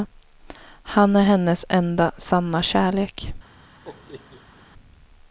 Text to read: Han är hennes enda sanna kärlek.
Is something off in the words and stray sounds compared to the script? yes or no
yes